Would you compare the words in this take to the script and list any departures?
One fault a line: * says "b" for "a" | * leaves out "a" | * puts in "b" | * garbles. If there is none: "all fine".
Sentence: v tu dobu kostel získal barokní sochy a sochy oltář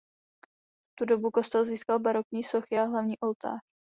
* says "hlavní" for "sochy"